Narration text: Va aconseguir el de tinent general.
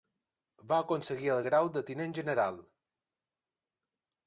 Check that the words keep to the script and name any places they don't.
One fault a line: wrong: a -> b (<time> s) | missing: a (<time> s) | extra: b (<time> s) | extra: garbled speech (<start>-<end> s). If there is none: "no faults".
extra: grau (1.5 s)